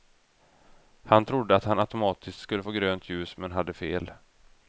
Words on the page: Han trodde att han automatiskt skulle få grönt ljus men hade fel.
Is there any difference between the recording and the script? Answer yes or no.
no